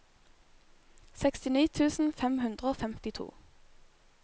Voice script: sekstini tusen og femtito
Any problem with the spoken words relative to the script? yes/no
yes